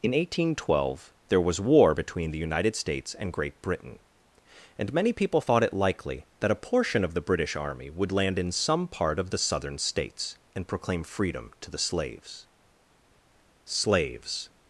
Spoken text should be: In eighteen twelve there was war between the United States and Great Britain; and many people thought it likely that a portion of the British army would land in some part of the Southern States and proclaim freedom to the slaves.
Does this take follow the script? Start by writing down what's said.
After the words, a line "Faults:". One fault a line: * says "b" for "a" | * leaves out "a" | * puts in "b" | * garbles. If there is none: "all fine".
In eighteen twelve there was war between the United States and Great Britain; and many people thought it likely that a portion of the British army would land in some part of the Southern States and proclaim freedom to the slaves slaves.
Faults:
* puts in "slaves"